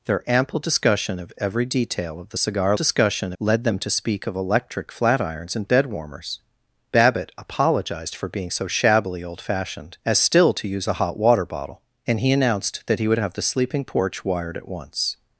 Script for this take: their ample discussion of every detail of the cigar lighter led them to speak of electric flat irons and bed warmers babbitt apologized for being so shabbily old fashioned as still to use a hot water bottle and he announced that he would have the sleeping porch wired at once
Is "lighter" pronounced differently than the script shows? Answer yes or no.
yes